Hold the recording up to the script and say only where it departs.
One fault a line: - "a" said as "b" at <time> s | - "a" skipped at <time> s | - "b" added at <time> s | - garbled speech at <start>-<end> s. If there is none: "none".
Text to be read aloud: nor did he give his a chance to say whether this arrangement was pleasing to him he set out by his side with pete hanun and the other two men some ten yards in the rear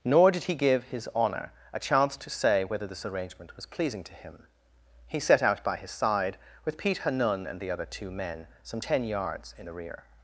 - "honour" added at 1.1 s